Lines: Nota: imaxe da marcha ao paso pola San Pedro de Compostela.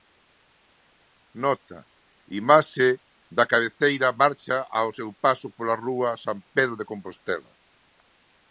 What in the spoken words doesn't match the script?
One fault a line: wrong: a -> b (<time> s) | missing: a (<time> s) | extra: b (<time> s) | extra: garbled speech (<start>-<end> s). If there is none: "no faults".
extra: cabeceira (3.5 s)
extra: seu (5.0 s)
extra: rúa (5.9 s)